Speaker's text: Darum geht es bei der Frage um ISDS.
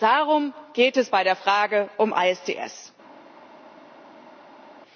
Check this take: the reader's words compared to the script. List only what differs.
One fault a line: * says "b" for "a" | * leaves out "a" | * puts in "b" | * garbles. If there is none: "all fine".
all fine